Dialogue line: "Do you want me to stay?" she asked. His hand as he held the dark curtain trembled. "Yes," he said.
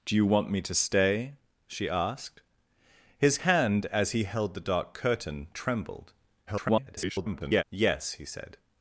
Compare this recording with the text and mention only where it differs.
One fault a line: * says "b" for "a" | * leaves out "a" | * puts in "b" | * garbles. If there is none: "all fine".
* garbles